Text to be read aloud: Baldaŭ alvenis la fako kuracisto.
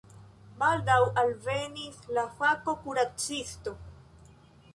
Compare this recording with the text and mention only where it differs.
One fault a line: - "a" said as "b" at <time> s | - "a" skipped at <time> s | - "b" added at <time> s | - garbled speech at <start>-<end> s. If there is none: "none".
none